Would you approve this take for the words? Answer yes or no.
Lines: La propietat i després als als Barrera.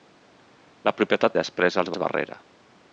yes